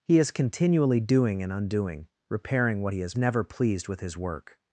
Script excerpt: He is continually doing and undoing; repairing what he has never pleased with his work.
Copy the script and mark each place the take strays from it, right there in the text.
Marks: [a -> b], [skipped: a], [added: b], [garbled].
He is continually doing and undoing; repairing what he has never pleased with his work.